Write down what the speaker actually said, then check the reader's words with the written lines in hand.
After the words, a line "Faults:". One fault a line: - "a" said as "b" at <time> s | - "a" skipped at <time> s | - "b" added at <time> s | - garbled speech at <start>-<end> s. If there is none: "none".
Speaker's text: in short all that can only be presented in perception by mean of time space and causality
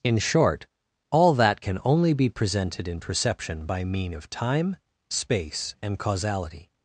in short all that can only be presented in perception by mean of time space and causality
Faults:
none